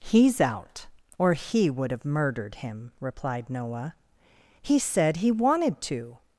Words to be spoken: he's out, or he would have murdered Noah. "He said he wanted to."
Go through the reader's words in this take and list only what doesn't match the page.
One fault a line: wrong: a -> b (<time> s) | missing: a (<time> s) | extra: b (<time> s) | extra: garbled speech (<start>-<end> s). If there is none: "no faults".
extra: him replied (2.5 s)